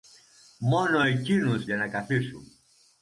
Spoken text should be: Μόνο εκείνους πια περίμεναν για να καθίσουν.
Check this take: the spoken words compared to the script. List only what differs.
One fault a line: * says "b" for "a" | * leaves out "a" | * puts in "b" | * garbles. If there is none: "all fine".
* leaves out "πια περίμεναν"